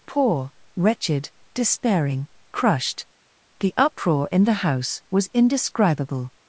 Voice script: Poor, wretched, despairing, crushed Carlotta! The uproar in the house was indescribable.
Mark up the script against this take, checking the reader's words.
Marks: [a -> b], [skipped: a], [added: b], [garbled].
Poor, wretched, despairing, crushed [skipped: Carlotta!] The uproar in the house was indescribable.